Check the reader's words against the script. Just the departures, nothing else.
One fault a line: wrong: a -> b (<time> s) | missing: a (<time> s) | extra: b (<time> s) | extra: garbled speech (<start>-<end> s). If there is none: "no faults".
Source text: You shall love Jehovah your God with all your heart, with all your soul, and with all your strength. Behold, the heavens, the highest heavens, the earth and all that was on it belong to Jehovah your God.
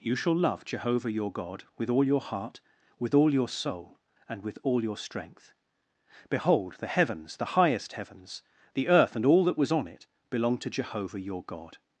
no faults